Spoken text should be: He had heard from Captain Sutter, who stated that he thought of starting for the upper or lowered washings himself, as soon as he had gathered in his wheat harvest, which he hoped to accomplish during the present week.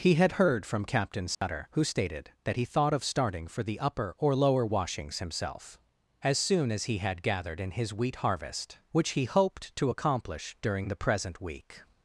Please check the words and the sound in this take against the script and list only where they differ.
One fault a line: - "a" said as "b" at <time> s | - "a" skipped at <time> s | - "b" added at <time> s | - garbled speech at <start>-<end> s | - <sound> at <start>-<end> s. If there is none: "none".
- dropout at 1.3-1.4 s
- "lowered" said as "lower" at 4.3 s